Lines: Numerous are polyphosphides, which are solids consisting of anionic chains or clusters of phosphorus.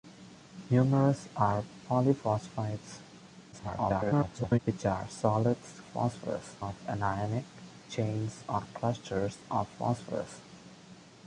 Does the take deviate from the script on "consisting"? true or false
true